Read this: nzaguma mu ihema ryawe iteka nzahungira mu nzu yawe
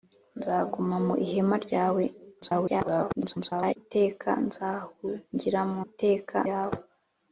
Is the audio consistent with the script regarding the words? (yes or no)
no